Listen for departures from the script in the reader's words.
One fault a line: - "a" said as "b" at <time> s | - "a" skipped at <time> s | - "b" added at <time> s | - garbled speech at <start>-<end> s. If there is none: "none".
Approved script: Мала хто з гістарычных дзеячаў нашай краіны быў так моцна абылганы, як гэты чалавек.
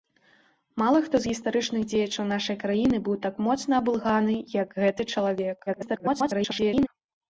- garbled speech at 5.7-6.9 s